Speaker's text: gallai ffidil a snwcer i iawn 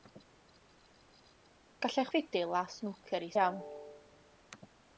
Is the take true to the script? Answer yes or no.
yes